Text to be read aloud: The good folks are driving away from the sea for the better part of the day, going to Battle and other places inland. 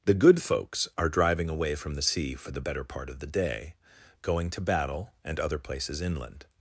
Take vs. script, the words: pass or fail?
pass